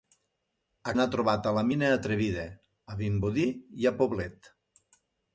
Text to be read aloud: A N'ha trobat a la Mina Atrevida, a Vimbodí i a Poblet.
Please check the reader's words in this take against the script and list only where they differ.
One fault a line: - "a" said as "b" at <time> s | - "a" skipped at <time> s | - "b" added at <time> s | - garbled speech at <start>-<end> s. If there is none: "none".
none